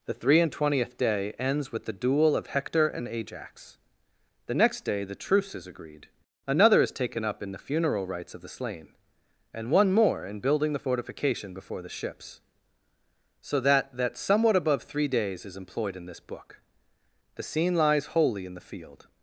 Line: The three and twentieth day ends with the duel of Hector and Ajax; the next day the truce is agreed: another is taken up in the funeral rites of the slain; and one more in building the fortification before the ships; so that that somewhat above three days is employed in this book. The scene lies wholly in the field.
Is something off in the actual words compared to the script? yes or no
no